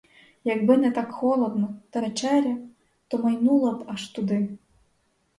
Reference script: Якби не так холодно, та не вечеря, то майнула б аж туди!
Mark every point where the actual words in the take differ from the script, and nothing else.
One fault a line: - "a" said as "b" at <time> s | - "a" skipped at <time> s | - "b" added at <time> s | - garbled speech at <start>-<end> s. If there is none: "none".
- "не" skipped at 2.0 s